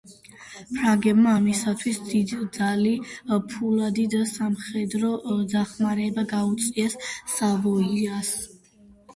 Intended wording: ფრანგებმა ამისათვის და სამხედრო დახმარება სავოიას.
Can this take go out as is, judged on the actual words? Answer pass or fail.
fail